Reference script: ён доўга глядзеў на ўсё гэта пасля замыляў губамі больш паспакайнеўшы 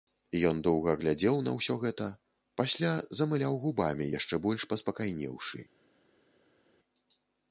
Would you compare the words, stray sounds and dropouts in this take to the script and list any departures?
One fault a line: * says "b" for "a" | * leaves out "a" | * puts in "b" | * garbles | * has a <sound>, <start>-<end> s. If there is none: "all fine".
* puts in "яшчэ"